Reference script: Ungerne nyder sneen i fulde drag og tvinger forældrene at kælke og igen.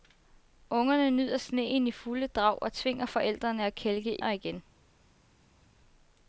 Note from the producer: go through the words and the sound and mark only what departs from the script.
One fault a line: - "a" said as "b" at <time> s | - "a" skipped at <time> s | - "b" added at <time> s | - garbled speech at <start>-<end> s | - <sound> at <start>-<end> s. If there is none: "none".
none